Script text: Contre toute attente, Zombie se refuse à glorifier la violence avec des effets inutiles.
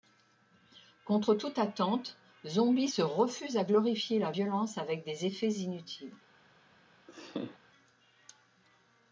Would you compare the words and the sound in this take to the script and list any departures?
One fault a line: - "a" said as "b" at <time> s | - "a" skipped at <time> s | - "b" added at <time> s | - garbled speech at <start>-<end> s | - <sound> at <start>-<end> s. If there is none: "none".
- laugh at 7.1-7.6 s